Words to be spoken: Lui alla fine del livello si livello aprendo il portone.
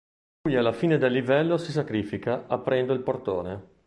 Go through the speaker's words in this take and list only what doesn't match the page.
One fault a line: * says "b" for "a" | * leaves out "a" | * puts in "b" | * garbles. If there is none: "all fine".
* says "sacrifica" for "livello"